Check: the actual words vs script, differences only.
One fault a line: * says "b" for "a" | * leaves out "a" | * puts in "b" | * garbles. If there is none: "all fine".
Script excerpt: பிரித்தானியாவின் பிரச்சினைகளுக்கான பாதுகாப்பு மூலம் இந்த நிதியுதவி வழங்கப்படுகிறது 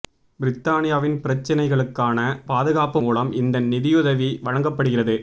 all fine